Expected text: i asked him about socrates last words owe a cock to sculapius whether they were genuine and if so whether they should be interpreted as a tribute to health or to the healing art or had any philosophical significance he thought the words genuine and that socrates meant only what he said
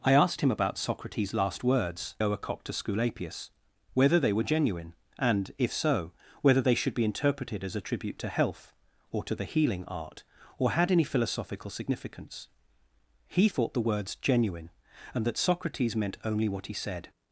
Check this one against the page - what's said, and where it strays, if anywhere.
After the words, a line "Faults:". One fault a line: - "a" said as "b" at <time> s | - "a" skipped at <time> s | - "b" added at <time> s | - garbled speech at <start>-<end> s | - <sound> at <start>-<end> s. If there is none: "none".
i asked him about socrates last words owe a cock to sculapius whether they were genuine and if so whether they should be interpreted as a tribute to health or to the healing art or had any philosophical significance he thought the words genuine and that socrates meant only what he said
Faults:
none